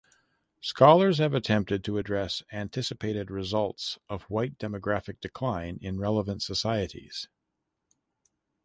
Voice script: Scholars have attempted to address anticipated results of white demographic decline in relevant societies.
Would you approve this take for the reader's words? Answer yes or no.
yes